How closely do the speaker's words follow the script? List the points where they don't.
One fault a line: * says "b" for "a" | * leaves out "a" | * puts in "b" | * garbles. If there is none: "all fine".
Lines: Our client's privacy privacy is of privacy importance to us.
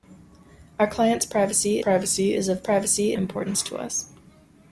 all fine